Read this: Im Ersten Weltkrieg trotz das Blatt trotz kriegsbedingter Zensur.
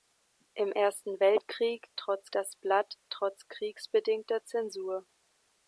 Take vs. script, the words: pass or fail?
pass